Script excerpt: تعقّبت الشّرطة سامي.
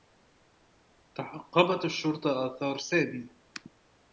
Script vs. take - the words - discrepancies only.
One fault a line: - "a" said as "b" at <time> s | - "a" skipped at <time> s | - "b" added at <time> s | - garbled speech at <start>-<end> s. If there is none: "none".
- "آثار" added at 2.5 s